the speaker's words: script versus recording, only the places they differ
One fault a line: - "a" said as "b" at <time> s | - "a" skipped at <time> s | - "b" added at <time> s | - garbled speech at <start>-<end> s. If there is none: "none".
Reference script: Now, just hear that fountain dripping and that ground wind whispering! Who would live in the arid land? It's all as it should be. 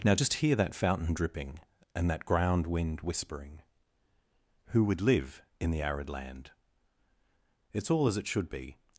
none